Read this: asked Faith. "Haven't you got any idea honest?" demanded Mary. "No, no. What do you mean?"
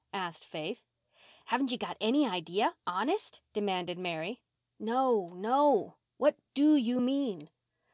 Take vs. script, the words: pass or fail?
pass